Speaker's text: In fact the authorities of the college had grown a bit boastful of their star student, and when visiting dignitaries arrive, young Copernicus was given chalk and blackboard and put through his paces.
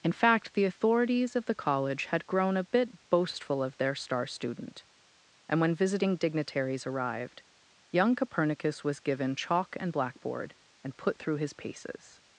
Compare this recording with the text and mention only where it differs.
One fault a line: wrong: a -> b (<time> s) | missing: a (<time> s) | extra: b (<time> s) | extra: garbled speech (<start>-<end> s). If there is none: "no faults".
wrong: arrive -> arrived (6.9 s)